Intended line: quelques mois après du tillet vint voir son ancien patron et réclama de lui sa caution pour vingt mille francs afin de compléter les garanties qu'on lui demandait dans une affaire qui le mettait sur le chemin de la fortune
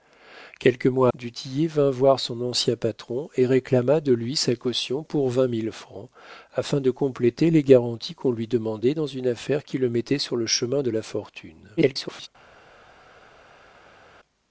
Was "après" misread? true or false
true